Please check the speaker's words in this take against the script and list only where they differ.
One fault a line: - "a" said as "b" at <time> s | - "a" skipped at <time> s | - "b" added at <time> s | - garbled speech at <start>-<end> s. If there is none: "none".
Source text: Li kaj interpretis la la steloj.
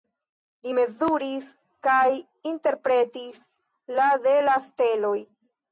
- "mezuris" added at 0.8 s
- "de" added at 4.3 s